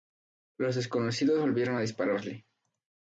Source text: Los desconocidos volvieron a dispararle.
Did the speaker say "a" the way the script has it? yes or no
yes